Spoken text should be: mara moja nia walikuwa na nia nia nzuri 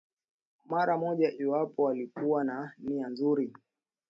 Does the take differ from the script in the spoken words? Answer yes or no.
yes